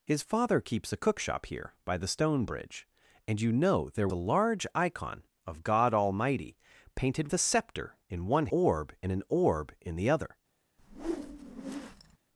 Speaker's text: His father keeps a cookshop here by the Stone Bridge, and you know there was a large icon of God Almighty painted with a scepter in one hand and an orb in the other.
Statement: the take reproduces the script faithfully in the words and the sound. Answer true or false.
false